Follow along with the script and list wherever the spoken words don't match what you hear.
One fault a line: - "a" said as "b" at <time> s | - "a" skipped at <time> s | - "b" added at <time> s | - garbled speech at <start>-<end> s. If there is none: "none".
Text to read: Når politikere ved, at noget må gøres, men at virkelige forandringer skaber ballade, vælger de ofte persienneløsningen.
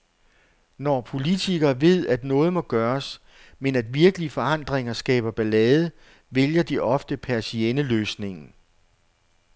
none